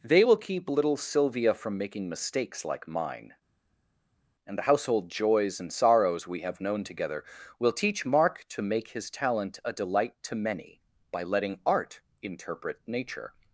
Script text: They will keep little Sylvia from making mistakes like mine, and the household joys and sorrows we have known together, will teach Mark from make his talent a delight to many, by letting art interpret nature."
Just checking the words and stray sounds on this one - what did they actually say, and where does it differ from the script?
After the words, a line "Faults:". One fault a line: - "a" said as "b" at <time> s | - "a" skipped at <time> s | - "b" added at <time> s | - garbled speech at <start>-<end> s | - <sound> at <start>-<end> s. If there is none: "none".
They will keep little Sylvia from making mistakes like mine, and the household joys and sorrows we have known together, will teach Mark to make his talent a delight to many, by letting art interpret nature."
Faults:
- "from" said as "to" at 8.5 s